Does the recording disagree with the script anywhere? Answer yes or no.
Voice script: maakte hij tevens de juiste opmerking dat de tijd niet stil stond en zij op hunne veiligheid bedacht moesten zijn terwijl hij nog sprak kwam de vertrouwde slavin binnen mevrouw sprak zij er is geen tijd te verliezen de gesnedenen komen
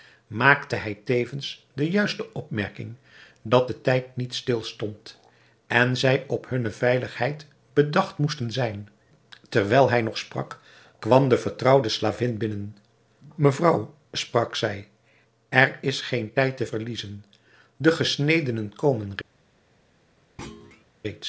no